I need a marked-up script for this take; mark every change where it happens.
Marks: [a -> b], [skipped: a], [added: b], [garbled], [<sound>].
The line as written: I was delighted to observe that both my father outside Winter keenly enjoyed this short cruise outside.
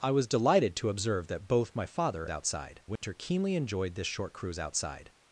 I was delighted to observe that both my father outside Winter [dropout] keenly enjoyed this short cruise outside.